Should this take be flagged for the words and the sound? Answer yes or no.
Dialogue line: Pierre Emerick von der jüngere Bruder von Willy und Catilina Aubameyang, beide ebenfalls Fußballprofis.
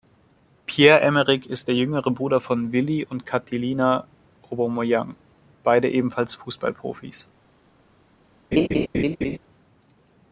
yes